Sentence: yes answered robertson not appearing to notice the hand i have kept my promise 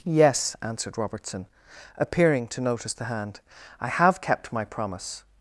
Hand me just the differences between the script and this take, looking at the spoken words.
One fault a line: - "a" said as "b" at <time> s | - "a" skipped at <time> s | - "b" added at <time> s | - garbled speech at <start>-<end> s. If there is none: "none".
- "not" skipped at 1.5 s